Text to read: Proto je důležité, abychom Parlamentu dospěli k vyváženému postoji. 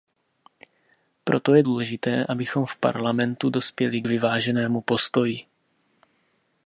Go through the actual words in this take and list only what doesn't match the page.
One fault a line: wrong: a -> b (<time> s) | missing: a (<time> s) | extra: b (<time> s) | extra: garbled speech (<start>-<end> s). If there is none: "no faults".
extra: v (2.6 s)